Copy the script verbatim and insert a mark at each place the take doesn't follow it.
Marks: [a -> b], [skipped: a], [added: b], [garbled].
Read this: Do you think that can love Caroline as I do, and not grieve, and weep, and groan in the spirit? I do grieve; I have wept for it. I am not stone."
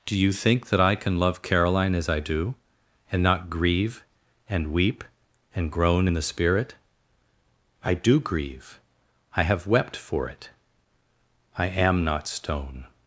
Do you think that [added: I] can love Caroline as I do, and not grieve, and weep, and groan in the spirit? I do grieve; I have wept for it. I am not stone."